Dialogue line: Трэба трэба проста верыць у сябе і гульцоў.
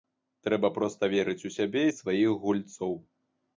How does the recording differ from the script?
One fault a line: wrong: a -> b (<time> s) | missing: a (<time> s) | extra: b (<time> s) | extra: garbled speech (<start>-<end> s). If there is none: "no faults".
missing: трэба (0.7 s)
extra: сваіх (2.0 s)